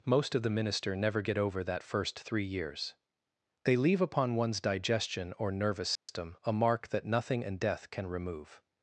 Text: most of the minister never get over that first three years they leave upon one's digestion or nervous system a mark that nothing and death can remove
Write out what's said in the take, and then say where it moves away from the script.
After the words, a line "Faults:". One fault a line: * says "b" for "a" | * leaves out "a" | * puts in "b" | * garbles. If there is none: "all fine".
most of the minister never get over that first three years they leave upon one's digestion or nervous system a mark that nothing and death can remove
Faults:
all fine